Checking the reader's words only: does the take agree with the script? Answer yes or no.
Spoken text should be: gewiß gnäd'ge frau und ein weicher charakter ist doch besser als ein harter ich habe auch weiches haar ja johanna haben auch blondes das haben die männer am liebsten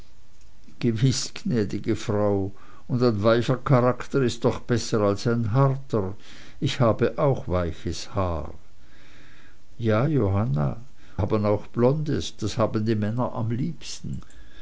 yes